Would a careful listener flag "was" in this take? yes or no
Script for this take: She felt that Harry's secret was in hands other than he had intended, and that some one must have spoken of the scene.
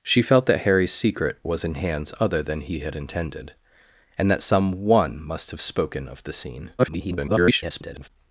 no